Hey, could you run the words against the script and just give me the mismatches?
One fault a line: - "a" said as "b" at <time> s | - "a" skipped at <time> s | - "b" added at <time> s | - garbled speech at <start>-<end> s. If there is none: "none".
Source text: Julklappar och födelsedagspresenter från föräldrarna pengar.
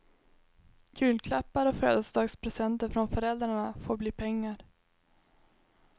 - "får bli" added at 3.7 s